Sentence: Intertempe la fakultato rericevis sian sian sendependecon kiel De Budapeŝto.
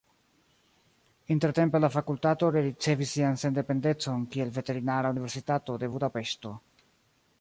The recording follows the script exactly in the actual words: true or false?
false